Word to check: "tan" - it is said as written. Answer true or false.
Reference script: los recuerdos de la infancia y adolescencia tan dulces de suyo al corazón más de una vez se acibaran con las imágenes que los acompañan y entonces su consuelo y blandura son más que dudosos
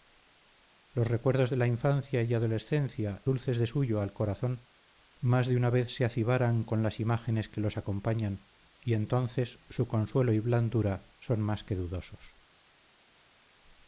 false